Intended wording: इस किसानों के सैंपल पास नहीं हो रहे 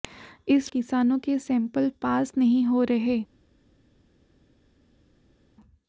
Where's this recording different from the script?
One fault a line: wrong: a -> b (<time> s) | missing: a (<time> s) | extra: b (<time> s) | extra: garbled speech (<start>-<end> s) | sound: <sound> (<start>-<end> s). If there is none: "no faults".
no faults